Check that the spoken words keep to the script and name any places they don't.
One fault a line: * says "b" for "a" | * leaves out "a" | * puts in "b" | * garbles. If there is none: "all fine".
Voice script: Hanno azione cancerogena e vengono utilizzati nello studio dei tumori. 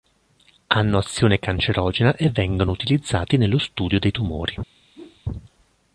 all fine